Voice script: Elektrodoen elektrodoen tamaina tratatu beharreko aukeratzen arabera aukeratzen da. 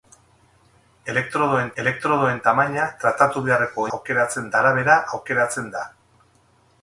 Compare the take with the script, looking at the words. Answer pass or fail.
pass